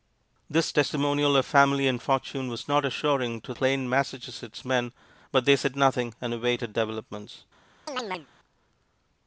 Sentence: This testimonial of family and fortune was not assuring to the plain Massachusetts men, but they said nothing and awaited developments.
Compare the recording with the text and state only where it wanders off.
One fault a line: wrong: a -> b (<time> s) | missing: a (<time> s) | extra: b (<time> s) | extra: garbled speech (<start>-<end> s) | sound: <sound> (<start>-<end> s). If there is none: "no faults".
missing: the (3.5 s)
sound: chirp (7.9-8.3 s)